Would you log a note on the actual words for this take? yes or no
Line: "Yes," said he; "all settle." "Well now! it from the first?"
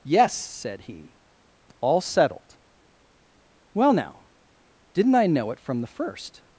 yes